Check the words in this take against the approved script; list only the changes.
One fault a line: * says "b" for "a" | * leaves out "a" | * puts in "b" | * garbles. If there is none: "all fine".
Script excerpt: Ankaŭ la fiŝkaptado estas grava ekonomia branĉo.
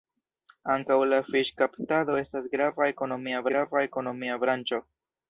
* puts in "grava ekonomia"